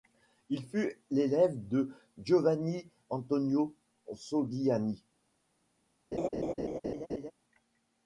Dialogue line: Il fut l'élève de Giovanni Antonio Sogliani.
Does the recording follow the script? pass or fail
pass